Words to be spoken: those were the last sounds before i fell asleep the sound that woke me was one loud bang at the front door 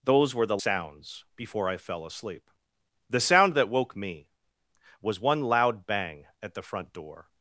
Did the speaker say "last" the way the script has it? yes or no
no